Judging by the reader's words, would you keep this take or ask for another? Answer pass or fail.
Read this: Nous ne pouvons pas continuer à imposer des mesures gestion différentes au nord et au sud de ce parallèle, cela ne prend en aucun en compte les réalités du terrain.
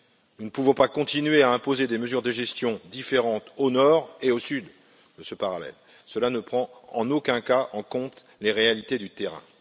fail